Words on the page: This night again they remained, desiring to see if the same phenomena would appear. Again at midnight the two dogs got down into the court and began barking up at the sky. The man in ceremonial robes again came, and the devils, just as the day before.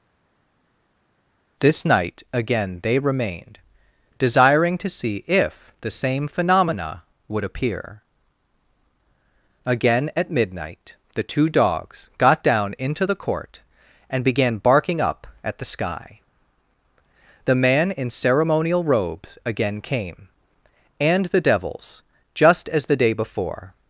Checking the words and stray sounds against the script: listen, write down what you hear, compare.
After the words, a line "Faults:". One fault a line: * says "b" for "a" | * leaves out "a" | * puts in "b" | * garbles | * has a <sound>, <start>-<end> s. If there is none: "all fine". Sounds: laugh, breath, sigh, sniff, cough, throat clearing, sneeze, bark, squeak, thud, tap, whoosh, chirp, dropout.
This night again they remained, desiring to see if the same phenomena would appear. Again at midnight the two dogs got down into the court and began barking up at the sky. The man in ceremonial robes again came, and the devils, just as the day before.
Faults:
all fine